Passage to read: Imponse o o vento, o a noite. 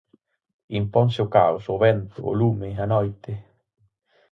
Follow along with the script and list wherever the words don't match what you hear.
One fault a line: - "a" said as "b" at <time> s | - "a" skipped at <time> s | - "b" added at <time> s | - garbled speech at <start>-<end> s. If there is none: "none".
- "caos" added at 1.4 s
- "lume" added at 2.4 s